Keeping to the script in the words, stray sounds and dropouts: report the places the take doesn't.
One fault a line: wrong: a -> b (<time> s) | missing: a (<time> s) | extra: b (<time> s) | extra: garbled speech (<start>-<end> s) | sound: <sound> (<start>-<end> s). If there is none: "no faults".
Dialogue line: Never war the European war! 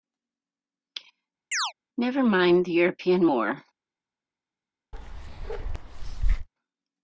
sound: chirp (1.5-1.7 s)
wrong: war -> mind (2.2 s)
sound: bark (4.9-6.5 s)